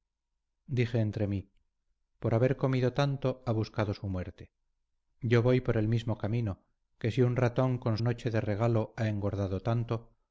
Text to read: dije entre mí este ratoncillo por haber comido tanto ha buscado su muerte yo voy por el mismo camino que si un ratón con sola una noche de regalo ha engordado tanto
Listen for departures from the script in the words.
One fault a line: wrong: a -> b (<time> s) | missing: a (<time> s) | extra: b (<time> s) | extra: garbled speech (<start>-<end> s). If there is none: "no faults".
missing: este ratoncillo (1.5 s)
missing: sola una (8.0 s)